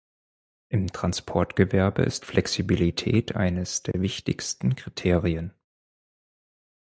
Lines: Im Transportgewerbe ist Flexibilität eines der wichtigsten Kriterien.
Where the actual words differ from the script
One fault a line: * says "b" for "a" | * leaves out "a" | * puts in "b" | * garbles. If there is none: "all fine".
all fine